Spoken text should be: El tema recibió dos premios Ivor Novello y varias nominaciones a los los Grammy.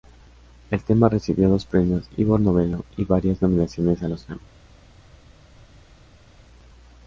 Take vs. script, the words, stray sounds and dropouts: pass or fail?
fail